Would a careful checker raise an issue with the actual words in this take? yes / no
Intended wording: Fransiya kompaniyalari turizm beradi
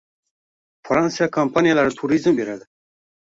no